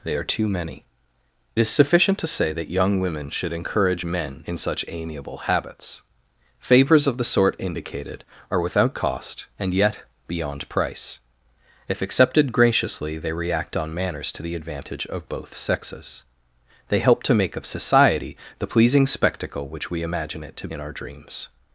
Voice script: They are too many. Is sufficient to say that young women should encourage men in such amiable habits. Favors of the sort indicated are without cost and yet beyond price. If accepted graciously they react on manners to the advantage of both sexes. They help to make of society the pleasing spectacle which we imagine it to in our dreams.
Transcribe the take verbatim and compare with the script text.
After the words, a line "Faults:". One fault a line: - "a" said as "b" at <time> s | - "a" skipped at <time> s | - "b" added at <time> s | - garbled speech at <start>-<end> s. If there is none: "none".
They are too many. Is sufficient to say that young women should encourage men in such amiable habits. Favors of the sort indicated are without cost and yet beyond price. If accepted graciously they react on manners to the advantage of both sexes. They help to make of society the pleasing spectacle which we imagine it to in our dreams.
Faults:
none